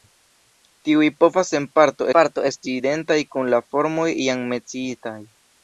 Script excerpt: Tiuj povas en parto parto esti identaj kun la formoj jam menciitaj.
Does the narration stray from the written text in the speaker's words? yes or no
no